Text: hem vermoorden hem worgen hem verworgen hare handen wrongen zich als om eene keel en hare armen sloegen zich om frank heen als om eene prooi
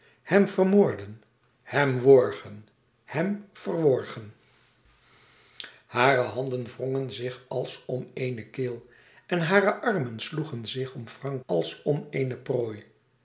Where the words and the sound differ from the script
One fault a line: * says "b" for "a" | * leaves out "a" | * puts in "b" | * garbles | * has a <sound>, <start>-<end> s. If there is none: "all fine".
* leaves out "heen"